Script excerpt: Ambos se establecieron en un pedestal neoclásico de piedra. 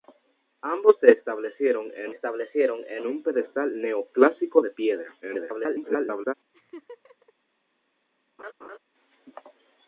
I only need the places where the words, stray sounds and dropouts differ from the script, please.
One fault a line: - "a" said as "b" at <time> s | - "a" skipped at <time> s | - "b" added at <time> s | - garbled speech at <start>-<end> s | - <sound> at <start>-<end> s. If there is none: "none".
- "establecieron en" added at 2.1 s
- garbled speech at 5.2-6.3 s
- laugh at 6.5-7.3 s
- laugh at 8.4-8.8 s